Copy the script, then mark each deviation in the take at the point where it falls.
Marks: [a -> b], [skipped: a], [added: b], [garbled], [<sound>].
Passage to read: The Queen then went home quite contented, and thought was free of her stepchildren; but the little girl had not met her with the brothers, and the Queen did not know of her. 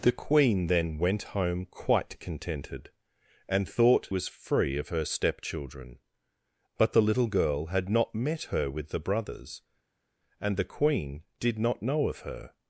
The Queen then went home quite contented, and thought was free of her stepchildren; but the little girl had not met her with the brothers, and the Queen did not know of her.